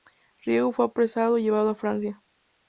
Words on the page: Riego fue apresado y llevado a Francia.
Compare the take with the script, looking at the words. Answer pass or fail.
pass